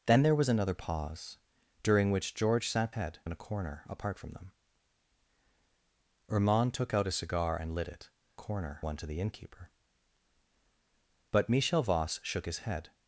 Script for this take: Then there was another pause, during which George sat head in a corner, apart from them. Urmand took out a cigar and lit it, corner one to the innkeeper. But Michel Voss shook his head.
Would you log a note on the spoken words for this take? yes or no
no